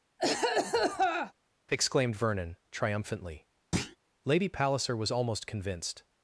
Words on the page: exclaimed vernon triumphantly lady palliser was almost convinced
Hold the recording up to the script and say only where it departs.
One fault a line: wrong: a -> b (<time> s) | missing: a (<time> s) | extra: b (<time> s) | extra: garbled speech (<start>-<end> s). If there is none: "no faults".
no faults